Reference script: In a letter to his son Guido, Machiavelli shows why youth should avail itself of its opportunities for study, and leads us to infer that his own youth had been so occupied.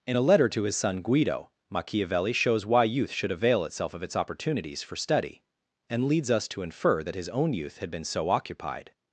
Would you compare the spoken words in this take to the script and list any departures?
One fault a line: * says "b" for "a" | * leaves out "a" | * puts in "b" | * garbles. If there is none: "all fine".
all fine